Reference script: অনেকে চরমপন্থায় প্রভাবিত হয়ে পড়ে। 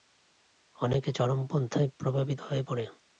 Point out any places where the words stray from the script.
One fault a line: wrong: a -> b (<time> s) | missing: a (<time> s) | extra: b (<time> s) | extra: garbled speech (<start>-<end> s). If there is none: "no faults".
no faults